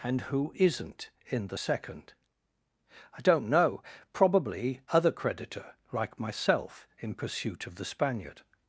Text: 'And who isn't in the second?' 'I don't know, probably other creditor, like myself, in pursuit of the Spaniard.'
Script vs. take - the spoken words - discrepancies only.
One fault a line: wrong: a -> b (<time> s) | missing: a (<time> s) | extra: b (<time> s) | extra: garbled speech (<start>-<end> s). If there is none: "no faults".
no faults